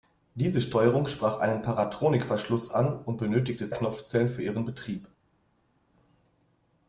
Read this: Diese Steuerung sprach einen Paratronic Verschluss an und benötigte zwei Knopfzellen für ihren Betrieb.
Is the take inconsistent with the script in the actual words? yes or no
yes